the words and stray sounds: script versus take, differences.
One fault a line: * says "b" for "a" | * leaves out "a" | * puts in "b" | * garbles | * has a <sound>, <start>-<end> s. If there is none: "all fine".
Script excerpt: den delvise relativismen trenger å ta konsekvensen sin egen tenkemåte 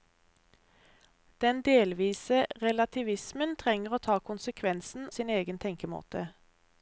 all fine